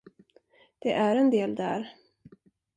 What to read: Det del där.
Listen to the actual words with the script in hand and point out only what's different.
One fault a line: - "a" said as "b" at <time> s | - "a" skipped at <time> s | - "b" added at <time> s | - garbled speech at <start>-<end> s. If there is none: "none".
- "är en" added at 0.9 s